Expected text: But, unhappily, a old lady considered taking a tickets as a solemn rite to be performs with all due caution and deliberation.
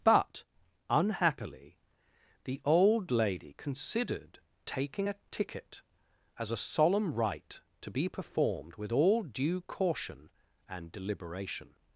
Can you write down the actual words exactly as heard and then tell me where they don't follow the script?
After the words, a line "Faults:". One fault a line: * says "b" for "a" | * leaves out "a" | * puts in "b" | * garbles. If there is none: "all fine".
But, unhappily, the old lady considered taking a ticket as a solemn rite to be performed with all due caution and deliberation.
Faults:
* says "the" for "a"
* says "ticket" for "tickets"
* says "performed" for "performs"